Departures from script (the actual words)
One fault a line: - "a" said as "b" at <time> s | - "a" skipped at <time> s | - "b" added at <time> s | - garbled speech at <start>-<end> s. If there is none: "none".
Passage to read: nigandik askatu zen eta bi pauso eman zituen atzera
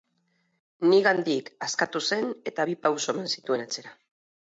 none